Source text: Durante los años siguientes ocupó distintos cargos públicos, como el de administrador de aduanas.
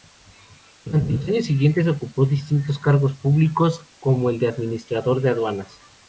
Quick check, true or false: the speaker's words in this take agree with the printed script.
true